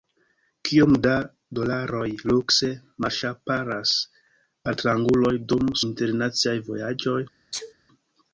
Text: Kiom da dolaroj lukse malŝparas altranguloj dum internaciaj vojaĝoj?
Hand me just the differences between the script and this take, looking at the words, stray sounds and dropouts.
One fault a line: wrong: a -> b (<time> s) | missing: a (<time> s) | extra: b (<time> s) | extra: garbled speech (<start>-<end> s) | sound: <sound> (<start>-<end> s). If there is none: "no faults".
sound: sneeze (7.5-7.7 s)